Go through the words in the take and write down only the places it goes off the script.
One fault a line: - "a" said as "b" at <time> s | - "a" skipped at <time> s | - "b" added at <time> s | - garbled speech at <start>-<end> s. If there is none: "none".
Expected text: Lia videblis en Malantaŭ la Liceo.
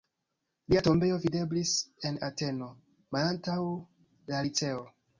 - "tombejo" added at 0.9 s
- "Ateno" added at 2.3 s